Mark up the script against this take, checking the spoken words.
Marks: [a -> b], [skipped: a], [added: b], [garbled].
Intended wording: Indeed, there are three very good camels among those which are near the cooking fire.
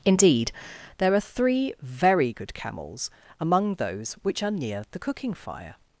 Indeed, there are three very good camels among those which are near the cooking fire.